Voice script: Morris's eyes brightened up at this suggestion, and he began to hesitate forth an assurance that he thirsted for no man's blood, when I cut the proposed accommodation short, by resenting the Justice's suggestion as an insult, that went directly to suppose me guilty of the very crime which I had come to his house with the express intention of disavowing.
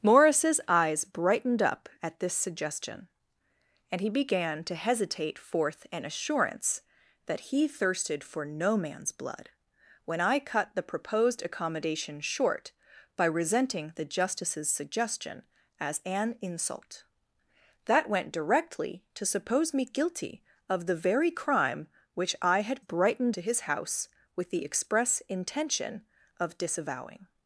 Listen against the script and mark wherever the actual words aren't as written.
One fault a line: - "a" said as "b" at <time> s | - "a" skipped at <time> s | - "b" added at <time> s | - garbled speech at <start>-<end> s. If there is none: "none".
- "come" said as "brightened" at 22.8 s